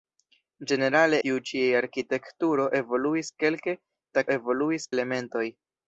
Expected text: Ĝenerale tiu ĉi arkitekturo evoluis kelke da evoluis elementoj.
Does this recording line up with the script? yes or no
yes